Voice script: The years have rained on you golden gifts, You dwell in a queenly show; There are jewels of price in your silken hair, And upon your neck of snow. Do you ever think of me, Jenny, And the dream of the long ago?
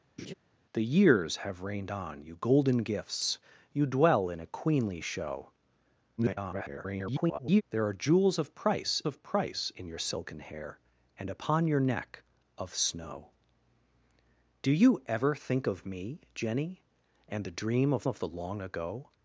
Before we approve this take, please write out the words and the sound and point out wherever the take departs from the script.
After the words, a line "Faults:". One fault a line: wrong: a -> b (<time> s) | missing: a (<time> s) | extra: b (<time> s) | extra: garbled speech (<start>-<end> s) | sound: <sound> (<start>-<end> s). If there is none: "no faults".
The years have rained on you golden gifts, You dwell in a queenly show; [garbled] There are jewels of price of price in your silken hair, And upon your neck of snow. Do you ever think of me, Jenny, And the dream of of the long ago?
Faults:
sound: laugh (0.2-0.3 s)
extra: garbled speech (6.2-7.6 s)
extra: of price (9.1 s)
extra: of (18.1 s)